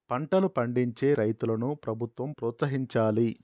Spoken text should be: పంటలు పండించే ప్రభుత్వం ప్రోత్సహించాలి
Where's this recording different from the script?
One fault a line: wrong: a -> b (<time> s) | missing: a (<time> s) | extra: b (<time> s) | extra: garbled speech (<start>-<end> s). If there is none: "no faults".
extra: రైతులను (1.1 s)